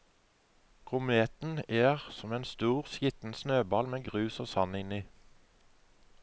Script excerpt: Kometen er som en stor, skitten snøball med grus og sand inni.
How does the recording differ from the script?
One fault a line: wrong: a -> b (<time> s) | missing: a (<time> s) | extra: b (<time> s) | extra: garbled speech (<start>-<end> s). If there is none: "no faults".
no faults